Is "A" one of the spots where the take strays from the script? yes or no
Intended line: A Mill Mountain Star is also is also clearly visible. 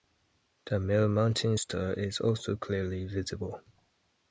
yes